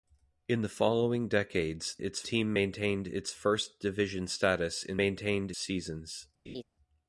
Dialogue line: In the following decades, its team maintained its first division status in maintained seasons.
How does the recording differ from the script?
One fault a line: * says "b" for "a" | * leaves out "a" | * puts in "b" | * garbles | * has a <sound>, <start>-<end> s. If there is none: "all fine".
* has a laugh, 6.5-6.6 s